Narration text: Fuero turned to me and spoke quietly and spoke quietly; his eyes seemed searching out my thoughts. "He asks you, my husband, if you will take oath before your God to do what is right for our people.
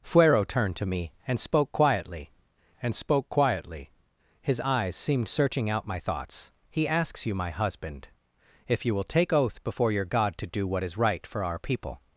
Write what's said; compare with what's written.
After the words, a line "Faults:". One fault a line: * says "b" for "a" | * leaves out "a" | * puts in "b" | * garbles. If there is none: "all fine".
Fuero turned to me and spoke quietly and spoke quietly; his eyes seemed searching out my thoughts. "He asks you, my husband, if you will take oath before your God to do what is right for our people.
Faults:
all fine